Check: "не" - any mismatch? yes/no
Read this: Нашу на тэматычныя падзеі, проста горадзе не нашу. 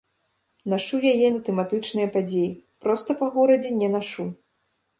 no